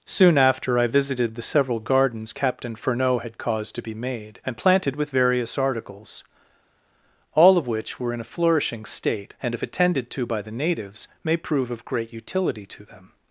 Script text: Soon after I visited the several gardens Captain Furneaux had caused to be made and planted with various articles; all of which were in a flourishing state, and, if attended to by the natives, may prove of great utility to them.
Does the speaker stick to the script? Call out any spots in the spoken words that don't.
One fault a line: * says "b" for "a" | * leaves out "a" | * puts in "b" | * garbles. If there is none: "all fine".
all fine